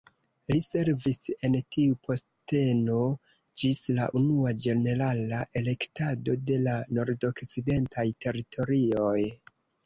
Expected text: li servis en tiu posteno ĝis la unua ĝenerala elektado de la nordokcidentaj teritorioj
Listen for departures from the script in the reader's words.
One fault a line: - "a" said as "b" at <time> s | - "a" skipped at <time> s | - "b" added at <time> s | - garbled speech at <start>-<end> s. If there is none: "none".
none